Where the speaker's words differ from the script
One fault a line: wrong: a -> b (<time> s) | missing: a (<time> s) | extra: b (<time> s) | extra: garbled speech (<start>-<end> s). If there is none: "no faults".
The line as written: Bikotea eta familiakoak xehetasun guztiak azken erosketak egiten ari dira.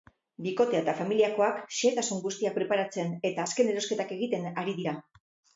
extra: preparatzen eta (2.6 s)